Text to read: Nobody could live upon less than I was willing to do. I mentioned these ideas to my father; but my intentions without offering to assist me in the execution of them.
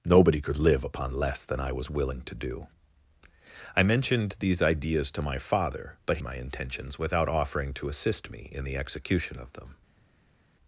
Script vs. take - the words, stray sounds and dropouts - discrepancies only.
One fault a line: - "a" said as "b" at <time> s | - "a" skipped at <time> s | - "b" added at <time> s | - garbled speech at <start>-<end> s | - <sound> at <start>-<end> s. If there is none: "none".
none